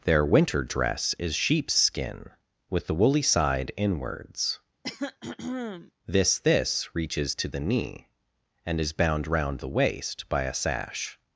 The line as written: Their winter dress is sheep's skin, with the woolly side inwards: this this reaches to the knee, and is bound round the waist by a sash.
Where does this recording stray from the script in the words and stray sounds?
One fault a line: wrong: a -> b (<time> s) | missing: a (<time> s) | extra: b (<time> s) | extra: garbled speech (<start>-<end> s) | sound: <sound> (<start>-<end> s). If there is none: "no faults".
sound: throat clearing (4.8-5.9 s)